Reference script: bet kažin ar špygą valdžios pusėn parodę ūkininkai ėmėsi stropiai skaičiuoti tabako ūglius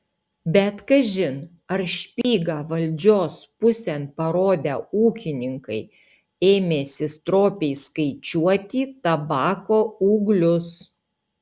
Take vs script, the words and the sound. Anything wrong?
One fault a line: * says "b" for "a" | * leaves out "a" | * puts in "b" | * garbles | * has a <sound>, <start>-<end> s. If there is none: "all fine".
* has a dropout, 2.2-2.2 s